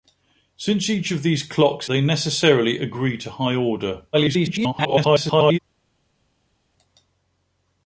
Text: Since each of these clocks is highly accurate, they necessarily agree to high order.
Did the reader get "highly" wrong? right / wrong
wrong